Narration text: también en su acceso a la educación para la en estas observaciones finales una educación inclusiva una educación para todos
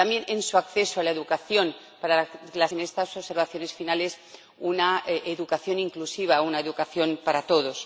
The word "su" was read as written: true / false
true